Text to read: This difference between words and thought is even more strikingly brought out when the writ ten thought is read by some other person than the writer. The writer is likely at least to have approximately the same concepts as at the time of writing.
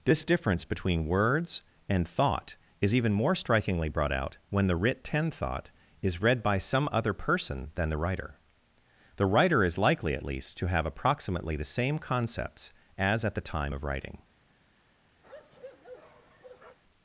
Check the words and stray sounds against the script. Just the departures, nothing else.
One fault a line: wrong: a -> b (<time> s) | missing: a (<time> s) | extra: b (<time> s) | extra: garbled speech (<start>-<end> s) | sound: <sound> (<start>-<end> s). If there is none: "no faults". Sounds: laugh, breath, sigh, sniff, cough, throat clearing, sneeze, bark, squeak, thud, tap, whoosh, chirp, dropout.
sound: bark (15.2-16.8 s)